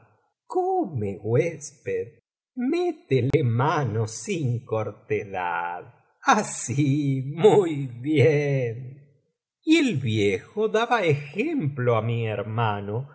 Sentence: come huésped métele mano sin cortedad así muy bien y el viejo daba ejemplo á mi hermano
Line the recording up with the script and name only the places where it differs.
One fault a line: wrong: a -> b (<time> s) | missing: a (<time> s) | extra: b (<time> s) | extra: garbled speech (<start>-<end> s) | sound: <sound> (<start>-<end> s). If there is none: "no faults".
sound: dropout (3.3-3.3 s)